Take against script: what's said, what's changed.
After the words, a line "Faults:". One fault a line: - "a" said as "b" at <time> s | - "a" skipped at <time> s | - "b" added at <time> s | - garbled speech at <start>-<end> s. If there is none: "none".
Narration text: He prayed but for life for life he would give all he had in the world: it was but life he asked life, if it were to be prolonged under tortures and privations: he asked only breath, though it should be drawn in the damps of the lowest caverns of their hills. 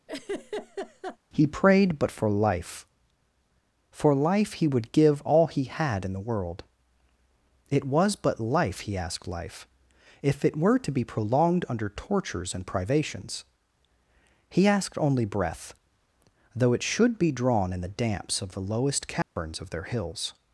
He prayed but for life for life he would give all he had in the world: it was but life he asked life, if it were to be prolonged under tortures and privations: he asked only breath, though it should be drawn in the damps of the lowest caverns of their hills.
Faults:
none